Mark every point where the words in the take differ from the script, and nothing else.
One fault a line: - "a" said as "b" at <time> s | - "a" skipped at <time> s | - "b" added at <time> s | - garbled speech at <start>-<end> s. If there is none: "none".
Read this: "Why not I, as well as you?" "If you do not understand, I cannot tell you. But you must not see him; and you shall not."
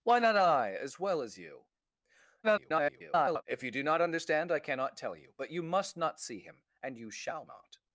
- garbled speech at 2.4-3.4 s